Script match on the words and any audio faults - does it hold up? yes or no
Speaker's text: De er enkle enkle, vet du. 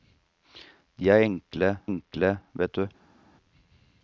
yes